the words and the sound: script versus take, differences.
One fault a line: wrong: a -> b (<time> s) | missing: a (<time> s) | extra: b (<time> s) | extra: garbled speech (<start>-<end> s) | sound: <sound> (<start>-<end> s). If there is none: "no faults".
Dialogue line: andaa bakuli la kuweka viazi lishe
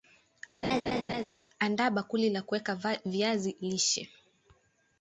sound: laugh (0.6-1.2 s)